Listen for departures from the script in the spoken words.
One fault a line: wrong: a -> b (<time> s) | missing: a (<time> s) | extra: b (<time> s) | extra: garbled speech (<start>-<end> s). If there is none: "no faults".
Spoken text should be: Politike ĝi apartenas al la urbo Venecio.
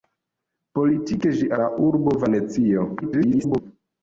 missing: apartenas al (1.5 s)
extra: garbled speech (3.0-3.6 s)